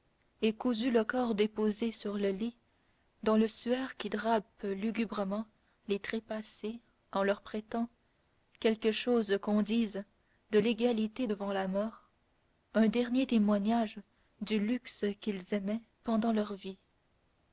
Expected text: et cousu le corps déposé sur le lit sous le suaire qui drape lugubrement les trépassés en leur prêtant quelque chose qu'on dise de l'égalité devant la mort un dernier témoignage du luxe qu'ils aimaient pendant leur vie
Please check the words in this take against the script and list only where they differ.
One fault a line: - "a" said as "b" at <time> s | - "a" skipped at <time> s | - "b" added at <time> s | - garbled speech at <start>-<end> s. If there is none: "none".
- "sous" said as "dans" at 3.2 s